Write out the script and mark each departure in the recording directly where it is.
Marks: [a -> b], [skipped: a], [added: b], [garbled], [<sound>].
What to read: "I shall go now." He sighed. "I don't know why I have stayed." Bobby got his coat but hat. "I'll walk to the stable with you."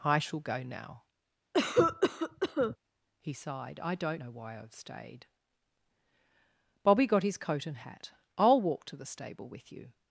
"I shall go now." [cough] He sighed. "I don't know why I have stayed." Bobby got his coat [but -> and] hat. "I'll walk to the stable with you."